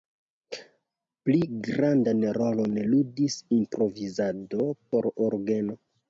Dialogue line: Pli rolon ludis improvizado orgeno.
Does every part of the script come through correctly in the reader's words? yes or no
no